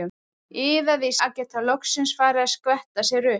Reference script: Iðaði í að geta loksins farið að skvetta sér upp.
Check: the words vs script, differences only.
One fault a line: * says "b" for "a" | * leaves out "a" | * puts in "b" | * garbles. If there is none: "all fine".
all fine